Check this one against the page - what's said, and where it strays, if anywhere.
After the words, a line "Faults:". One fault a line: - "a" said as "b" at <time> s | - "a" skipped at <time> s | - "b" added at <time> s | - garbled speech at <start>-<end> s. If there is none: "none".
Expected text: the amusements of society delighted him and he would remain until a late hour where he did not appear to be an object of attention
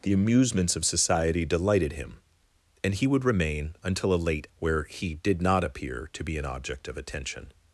the amusements of society delighted him and he would remain until a late where he did not appear to be an object of attention
Faults:
- "hour" skipped at 4.5 s